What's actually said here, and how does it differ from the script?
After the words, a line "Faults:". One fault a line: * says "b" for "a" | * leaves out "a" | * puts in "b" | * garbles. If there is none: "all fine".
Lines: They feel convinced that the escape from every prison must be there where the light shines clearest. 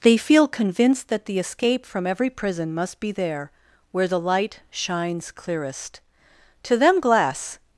They feel convinced that the escape from every prison must be there where the light shines clearest. To them glass
Faults:
* puts in "To them glass"